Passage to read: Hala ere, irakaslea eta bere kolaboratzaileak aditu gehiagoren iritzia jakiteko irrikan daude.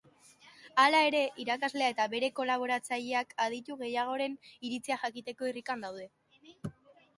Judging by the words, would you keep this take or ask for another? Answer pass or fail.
pass